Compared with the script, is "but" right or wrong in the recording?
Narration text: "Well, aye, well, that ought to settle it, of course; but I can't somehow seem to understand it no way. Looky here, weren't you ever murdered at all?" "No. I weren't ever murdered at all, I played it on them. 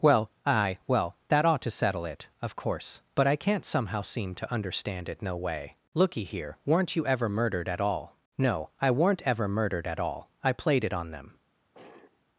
right